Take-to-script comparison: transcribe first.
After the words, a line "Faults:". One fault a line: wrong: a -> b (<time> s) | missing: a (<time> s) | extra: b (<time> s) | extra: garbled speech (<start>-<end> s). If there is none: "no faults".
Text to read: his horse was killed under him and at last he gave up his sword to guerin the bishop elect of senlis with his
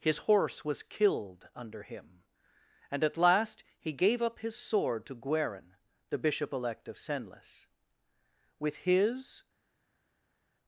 his horse was killed under him and at last he gave up his sword to guerin the bishop elect of senlis with his
Faults:
no faults